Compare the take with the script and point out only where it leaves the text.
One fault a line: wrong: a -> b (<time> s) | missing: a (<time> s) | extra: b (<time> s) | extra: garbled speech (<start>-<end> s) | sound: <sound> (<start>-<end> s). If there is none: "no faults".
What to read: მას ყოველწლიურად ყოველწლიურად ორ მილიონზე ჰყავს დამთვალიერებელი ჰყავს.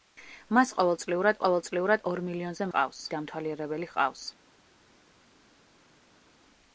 no faults